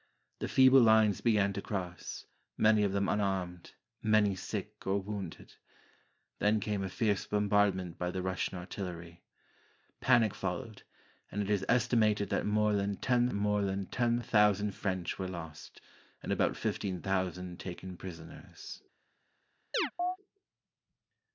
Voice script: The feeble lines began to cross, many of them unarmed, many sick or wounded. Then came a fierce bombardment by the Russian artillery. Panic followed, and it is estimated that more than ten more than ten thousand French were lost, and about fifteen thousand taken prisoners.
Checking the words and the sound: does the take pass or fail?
fail